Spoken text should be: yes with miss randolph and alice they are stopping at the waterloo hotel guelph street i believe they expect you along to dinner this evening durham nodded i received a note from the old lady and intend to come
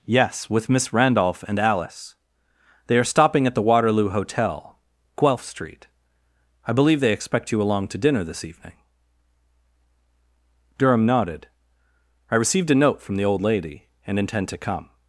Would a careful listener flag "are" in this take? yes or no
no